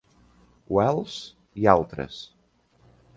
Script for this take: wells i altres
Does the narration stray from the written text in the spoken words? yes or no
no